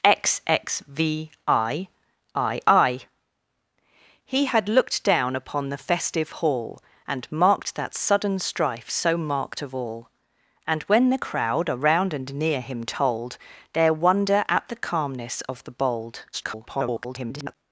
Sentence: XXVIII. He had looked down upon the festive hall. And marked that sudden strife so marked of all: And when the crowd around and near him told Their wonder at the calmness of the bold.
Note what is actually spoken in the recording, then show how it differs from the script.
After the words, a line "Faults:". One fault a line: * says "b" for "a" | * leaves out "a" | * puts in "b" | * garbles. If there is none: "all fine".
XXVIII. He had looked down upon the festive hall. And marked that sudden strife so marked of all: And when the crowd around and near him told Their wonder at the calmness of the bold. [garbled]
Faults:
* garbles